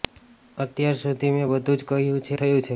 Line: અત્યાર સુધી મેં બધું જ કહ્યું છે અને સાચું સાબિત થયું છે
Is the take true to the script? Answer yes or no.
no